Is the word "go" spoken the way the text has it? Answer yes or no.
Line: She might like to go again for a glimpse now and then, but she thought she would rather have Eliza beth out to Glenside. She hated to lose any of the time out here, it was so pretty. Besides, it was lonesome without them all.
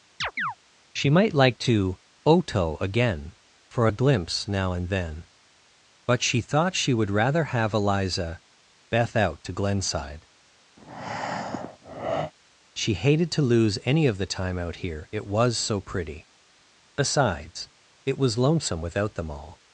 no